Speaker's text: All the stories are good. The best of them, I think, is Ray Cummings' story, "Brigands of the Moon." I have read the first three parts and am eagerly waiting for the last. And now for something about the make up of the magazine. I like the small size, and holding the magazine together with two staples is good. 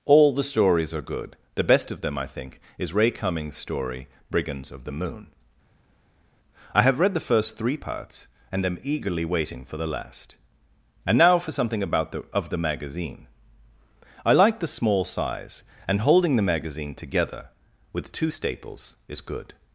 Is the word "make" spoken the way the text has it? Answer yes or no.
no